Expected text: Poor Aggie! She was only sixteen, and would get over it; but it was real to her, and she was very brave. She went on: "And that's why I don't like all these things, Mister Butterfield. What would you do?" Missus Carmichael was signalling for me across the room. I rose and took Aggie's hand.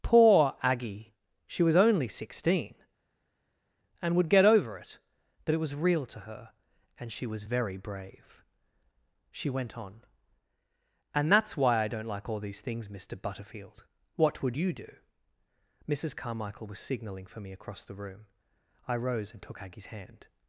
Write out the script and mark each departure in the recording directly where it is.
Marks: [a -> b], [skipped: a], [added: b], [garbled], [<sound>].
Poor Aggie! She was only sixteen, and would get over it; but it was real to her, and she was very brave. She went on: "And that's why I don't like all these things, Mister Butterfield. What would you do?" Missus Carmichael was signalling for me across the room. I rose and took Aggie's hand.